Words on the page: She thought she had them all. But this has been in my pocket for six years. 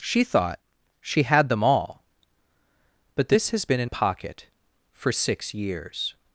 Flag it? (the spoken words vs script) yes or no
yes